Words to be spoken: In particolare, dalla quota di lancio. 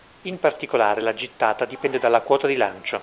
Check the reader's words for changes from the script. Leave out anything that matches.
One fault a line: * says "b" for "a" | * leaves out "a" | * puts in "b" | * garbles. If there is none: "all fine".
* puts in "la gittata dipende"